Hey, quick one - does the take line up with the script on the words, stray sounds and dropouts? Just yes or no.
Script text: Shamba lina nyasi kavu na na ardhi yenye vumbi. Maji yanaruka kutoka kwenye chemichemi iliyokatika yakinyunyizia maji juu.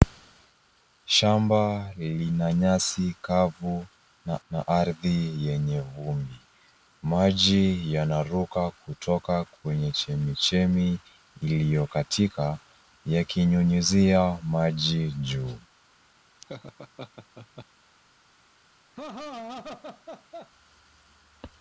no